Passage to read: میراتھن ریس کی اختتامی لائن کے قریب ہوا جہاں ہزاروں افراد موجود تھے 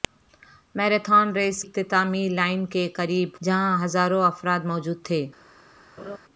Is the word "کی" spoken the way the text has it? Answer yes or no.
no